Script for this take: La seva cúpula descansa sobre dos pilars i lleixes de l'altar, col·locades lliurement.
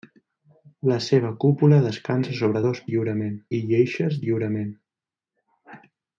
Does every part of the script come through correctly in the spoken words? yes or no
no